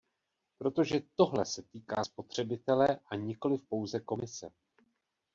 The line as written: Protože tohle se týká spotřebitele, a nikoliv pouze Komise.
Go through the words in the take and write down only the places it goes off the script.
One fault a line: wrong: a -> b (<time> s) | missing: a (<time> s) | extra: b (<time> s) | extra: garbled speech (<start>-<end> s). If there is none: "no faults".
no faults